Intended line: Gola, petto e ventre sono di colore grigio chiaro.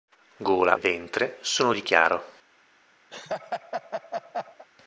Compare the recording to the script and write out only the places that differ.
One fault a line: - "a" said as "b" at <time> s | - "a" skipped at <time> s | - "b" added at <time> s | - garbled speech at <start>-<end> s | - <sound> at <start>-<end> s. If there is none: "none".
- "petto e" skipped at 0.8 s
- "colore grigio" skipped at 1.8 s
- laugh at 3.1-4.7 s